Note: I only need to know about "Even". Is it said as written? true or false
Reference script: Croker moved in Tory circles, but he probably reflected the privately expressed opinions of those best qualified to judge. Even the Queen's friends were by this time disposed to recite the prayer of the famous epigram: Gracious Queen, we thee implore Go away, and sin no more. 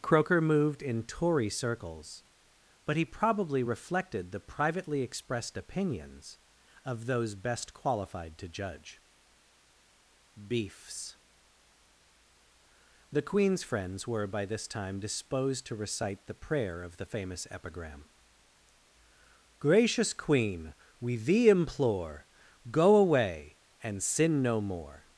false